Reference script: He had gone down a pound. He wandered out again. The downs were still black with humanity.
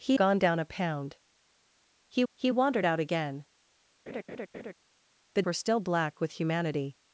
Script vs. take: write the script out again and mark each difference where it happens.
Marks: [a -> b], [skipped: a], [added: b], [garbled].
He [skipped: had] gone down a pound. He [added: he] wandered out again. The [skipped: downs] were still black with humanity.